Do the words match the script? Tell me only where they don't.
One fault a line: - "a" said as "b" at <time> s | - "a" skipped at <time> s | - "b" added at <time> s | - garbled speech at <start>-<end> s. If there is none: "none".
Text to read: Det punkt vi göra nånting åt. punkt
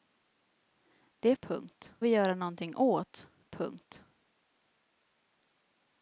none